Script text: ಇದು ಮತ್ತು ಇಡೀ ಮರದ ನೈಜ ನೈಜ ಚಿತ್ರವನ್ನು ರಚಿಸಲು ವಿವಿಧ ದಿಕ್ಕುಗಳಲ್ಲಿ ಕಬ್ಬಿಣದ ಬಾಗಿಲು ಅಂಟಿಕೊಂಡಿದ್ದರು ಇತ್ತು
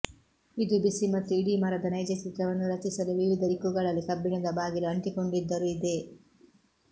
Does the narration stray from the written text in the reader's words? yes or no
yes